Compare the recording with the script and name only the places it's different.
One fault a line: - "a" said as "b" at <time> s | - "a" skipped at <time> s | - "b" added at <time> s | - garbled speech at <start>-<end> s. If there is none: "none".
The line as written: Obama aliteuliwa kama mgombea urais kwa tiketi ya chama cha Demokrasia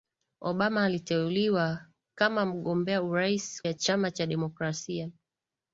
- "kwa tiketi" skipped at 3.6 s